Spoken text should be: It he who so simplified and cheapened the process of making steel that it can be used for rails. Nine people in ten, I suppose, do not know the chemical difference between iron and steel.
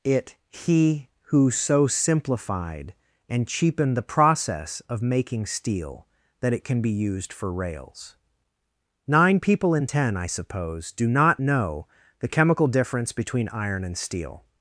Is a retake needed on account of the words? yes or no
no